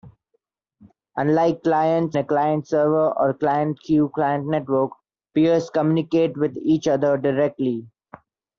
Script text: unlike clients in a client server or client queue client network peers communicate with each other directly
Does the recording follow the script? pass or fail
fail